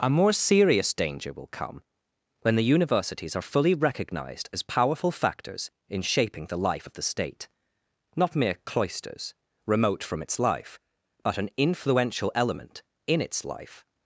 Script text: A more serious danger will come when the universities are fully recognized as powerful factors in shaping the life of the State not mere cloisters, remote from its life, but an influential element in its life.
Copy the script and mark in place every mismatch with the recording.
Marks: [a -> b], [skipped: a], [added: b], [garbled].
A more serious danger will come when the universities are fully recognized as powerful factors in shaping the life of the State not mere cloisters, remote from its life, but an influential element in its life.